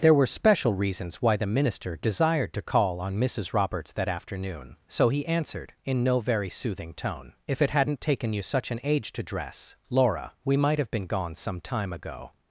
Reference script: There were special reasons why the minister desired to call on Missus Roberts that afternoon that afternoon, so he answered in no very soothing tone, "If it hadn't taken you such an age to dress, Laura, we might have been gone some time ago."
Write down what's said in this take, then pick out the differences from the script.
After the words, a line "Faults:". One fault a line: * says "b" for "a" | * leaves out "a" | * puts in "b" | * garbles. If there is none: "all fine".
There were special reasons why the minister desired to call on Missus Roberts that afternoon, so he answered in no very soothing tone, "If it hadn't taken you such an age to dress, Laura, we might have been gone some time ago."
Faults:
* leaves out "that afternoon"